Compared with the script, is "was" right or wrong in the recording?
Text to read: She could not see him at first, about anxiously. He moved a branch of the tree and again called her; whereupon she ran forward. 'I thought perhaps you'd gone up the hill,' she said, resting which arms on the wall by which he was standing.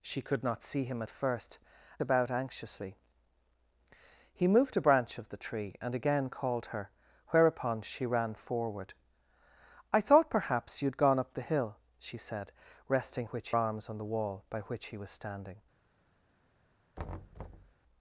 right